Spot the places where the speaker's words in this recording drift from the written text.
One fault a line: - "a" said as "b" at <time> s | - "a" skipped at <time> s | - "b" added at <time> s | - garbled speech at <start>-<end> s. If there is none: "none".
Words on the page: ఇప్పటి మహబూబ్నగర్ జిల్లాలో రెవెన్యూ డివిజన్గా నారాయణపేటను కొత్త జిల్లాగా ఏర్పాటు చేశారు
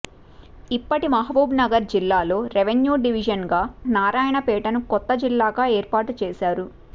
none